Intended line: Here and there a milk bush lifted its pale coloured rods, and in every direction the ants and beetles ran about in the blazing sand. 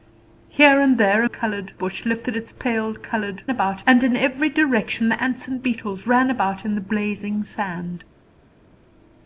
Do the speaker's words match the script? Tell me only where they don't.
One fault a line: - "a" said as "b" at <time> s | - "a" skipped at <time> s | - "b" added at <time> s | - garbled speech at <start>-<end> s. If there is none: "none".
- "milk" said as "coloured" at 1.2 s
- "rods" said as "about" at 3.5 s